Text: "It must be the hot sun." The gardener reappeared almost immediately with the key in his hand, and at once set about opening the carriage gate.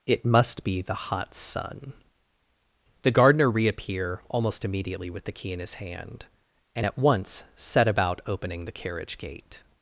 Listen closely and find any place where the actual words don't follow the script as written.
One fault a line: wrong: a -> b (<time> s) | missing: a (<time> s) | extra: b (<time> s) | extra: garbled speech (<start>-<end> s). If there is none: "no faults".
wrong: reappeared -> reappear (3.5 s)